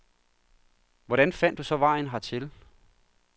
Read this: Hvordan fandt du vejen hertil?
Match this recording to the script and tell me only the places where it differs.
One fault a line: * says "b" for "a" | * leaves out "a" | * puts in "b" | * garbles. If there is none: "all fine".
* puts in "så"